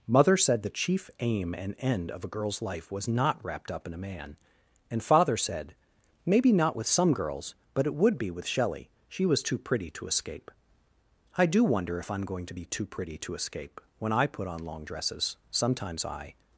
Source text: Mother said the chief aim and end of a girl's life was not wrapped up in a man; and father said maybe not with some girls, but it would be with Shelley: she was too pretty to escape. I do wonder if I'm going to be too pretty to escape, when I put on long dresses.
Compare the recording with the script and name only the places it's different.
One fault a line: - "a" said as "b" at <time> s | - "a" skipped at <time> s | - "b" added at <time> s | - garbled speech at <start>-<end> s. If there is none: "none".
- "Sometimes I" added at 15.5 s